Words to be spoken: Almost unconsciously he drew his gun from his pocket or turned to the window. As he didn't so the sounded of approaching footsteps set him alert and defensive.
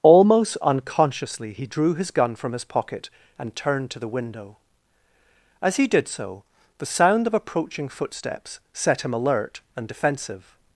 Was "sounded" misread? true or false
true